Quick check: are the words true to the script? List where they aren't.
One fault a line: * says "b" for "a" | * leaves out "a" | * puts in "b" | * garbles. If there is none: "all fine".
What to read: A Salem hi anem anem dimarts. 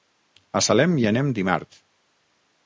* leaves out "anem"